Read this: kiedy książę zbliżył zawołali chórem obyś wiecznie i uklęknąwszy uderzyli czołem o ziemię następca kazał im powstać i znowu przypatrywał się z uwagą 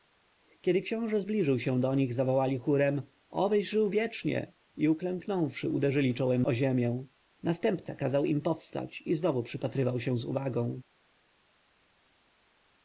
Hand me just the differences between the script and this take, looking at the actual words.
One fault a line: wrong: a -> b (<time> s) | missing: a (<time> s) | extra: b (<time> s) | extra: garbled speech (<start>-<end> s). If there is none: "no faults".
extra: się do nich (1.6 s)
extra: żył (3.7 s)